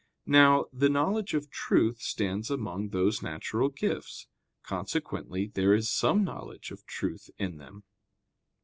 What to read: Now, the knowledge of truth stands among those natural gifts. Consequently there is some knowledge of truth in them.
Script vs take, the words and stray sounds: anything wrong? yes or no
no